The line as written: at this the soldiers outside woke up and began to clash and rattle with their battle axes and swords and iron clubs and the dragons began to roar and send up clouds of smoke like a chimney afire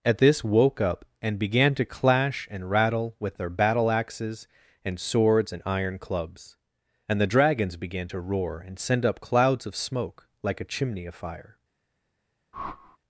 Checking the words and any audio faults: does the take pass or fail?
fail